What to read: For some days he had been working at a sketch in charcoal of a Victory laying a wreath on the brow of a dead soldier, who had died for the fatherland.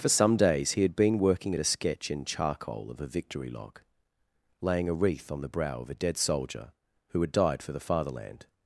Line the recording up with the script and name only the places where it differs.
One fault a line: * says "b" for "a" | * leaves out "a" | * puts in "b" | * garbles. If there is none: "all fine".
* puts in "log"